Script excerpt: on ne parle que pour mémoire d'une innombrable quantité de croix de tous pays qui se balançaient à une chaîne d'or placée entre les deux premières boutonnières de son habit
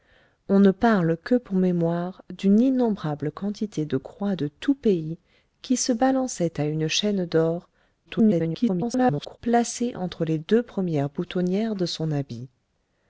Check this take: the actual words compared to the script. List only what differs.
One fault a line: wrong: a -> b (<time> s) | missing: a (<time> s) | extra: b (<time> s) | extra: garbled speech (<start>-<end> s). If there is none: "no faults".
extra: garbled speech (8.1-9.4 s)